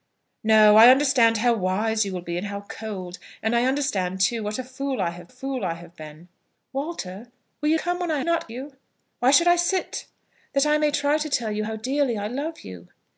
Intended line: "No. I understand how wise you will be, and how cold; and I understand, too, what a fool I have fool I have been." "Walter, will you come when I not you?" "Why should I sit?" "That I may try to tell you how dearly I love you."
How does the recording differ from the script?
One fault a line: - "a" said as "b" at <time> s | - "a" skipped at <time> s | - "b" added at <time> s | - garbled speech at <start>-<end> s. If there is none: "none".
none